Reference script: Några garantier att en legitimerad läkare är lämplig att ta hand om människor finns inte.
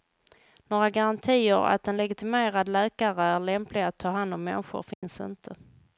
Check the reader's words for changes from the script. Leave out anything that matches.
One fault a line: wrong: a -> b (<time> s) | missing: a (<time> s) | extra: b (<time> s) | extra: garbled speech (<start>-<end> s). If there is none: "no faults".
no faults